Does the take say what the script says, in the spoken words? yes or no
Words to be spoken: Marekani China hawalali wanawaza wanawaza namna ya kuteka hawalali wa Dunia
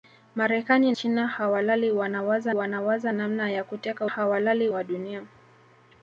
yes